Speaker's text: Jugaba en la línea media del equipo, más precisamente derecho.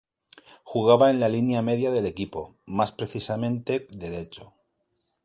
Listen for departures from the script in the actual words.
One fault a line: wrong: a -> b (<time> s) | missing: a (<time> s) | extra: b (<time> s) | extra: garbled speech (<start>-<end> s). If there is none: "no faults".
no faults